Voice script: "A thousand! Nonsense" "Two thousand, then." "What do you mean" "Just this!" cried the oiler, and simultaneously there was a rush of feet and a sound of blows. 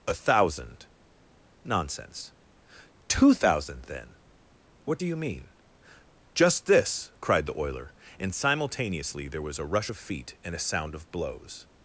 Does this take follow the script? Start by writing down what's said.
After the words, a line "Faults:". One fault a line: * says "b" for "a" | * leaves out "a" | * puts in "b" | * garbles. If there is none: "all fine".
"A thousand! Nonsense" "Two thousand, then." "What do you mean" "Just this!" cried the oiler, and simultaneously there was a rush of feet and a sound of blows.
Faults:
all fine